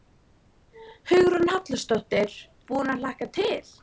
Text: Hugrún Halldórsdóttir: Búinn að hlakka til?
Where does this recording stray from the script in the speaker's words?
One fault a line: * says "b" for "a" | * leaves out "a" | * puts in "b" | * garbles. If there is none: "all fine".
all fine